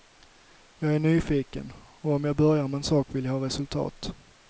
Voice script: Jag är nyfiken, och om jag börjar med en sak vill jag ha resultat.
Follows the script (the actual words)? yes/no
yes